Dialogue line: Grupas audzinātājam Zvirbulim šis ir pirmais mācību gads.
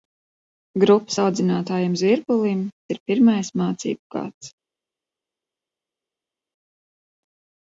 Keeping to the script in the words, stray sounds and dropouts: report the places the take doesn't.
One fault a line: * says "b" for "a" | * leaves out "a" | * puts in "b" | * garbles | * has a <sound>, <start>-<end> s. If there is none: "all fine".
* leaves out "šis"